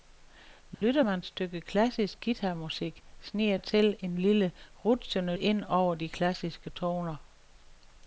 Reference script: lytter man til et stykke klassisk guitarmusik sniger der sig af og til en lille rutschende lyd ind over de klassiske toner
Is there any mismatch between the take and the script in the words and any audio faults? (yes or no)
yes